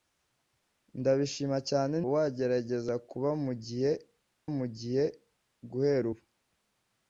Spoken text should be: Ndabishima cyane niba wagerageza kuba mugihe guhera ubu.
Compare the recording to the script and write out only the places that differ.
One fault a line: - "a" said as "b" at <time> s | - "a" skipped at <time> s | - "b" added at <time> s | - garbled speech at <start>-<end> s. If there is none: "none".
- "niba" skipped at 1.9 s
- "mugihe" added at 4.6 s